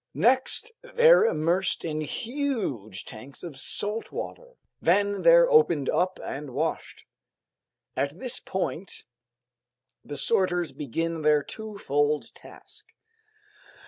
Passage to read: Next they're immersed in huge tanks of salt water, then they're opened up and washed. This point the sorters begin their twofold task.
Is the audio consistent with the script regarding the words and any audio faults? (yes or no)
no